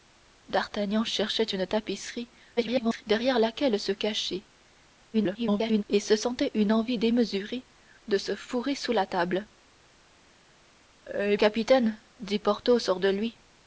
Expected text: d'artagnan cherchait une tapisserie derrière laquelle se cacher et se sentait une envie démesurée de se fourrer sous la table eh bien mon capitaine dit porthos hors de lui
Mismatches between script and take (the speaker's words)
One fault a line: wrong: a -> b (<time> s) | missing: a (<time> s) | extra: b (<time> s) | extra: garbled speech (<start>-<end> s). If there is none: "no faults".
extra: garbled speech (2.6-3.0 s)
extra: garbled speech (5.1-5.8 s)
missing: bien mon (11.4 s)